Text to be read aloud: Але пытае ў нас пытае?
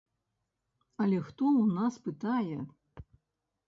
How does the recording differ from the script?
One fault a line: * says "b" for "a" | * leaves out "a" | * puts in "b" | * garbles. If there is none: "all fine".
* says "хто" for "пытае"